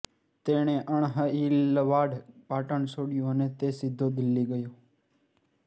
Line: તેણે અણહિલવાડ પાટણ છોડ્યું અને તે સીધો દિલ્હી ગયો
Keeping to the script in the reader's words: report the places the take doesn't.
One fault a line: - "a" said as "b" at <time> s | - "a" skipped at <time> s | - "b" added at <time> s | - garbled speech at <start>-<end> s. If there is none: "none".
none